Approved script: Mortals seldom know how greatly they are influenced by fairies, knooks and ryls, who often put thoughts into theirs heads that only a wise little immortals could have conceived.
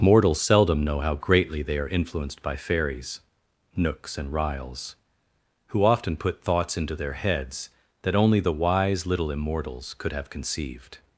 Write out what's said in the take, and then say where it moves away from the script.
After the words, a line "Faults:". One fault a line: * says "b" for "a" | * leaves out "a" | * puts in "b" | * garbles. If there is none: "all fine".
Mortals seldom know how greatly they are influenced by fairies, knooks and ryls, who often put thoughts into their heads that only the wise little immortals could have conceived.
Faults:
* says "their" for "theirs"
* says "the" for "a"